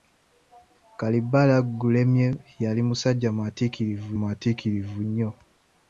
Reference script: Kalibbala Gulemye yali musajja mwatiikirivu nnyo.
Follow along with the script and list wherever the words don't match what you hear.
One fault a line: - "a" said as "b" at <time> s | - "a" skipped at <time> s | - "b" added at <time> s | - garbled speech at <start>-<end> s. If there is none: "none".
- "mwatiikirivu" added at 4.2 s